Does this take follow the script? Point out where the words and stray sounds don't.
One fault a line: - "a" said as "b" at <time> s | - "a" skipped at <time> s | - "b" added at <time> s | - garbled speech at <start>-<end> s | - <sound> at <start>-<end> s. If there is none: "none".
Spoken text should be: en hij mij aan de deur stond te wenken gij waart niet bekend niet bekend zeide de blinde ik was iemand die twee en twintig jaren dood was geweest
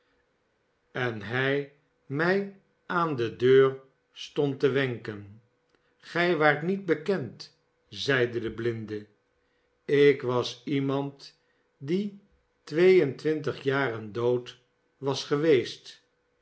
- "niet bekend" skipped at 7.6 s